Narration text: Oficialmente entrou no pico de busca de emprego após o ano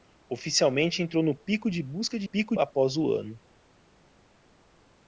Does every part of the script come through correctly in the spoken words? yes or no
no